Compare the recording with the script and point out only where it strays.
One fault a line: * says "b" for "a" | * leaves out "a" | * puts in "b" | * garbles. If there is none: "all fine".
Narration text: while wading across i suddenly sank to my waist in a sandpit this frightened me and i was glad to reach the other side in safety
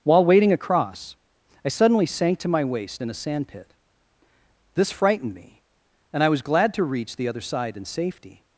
all fine